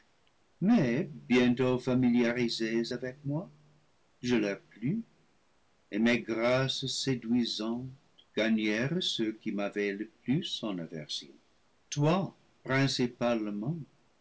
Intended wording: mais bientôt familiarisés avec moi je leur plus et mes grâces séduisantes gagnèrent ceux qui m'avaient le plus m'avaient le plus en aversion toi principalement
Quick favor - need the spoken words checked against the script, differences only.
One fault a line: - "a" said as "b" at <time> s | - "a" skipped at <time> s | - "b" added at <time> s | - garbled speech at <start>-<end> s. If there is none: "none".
- "m'avaient le plus" skipped at 10.6 s